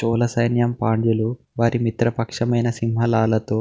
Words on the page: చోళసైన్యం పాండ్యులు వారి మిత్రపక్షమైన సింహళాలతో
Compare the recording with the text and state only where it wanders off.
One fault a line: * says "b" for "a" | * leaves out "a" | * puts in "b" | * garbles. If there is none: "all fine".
all fine